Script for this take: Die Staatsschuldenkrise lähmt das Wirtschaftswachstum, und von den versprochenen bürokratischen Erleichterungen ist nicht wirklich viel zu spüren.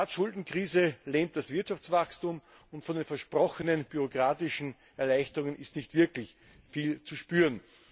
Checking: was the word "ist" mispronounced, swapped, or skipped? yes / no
no